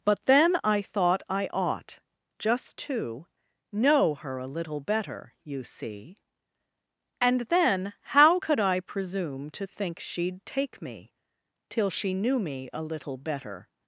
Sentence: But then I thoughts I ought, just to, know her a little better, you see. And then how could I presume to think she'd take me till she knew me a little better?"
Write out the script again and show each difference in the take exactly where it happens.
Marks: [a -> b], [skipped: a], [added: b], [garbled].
But then I [thoughts -> thought] I ought, just to, know her a little better, you see. And then how could I presume to think she'd take me till she knew me a little better?"